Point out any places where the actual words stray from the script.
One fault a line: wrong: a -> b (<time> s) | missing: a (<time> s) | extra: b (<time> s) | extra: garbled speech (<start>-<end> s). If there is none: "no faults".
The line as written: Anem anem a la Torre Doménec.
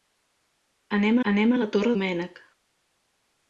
no faults